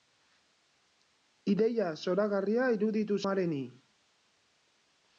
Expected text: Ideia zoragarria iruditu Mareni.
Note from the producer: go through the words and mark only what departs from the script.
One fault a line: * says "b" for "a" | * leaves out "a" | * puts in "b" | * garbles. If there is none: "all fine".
all fine